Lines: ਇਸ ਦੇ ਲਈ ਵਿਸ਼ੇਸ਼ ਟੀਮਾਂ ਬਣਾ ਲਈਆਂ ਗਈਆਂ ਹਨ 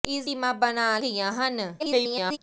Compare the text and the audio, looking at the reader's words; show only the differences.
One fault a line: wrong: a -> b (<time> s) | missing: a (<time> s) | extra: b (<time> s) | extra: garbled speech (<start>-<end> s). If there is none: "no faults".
missing: ਦੇ ਲਈ ਵਿਸ਼ੇਸ਼ (0.2 s)
missing: ਲਈਆਂ (1.0 s)
extra: garbled speech (1.8-2.4 s)